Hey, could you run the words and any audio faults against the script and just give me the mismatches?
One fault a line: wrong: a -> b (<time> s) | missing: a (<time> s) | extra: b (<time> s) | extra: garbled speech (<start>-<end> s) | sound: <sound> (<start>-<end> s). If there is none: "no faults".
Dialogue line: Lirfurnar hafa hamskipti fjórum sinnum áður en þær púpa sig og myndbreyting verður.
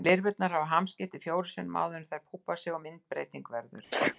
sound: sneeze (3.9-4.2 s)